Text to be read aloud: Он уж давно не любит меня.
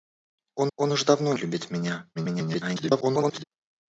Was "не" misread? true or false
true